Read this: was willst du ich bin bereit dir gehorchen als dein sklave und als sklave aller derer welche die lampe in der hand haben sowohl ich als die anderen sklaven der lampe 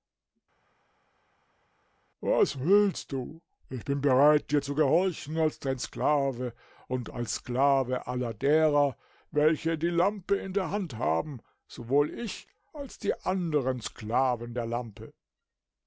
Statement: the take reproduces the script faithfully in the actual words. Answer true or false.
false